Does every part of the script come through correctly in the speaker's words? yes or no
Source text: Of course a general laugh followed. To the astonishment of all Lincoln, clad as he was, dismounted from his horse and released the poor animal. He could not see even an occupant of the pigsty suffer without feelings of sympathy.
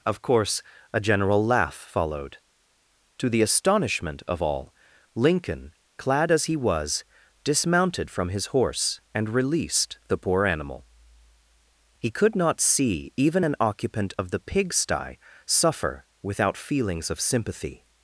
yes